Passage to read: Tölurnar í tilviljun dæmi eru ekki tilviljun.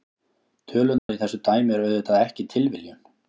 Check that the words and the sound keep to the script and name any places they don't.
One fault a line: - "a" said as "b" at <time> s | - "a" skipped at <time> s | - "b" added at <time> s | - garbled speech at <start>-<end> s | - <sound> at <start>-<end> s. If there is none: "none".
- dropout at 1.0-1.1 s
- "tilviljun" said as "þessu" at 1.2 s
- "auðvitað" added at 1.9 s